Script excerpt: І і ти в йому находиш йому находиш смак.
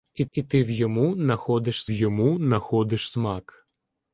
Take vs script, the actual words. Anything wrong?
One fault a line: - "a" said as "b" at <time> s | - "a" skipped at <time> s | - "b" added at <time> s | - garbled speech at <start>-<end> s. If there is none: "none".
none